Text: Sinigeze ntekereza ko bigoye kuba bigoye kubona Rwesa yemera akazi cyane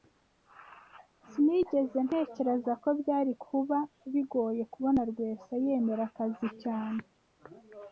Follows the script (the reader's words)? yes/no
no